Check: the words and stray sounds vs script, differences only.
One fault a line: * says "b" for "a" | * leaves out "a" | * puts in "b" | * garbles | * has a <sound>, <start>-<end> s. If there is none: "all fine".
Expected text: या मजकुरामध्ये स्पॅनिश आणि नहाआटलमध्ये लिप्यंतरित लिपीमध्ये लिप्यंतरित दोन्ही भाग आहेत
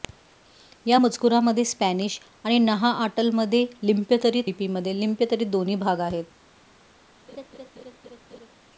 * has a laugh, 7.3-8.5 s